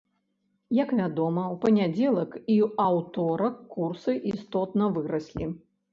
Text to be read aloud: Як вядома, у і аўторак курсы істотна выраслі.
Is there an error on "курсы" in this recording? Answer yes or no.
no